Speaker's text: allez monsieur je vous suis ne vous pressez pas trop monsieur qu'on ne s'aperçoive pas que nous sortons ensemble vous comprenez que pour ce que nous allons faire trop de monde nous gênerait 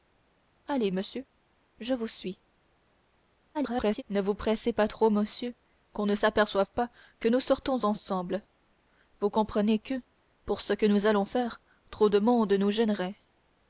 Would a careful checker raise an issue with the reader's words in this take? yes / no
yes